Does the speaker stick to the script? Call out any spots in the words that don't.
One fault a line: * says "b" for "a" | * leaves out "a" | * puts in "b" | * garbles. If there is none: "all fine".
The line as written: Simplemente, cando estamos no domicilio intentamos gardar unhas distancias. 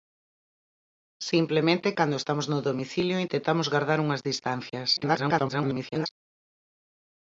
* garbles